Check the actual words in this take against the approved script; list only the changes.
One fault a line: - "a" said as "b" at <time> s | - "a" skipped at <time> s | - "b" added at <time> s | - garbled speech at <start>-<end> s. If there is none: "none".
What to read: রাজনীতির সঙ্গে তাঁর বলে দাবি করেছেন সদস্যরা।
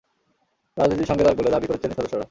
none